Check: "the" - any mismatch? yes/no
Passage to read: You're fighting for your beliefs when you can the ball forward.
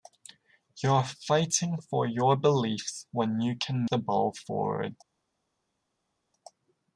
no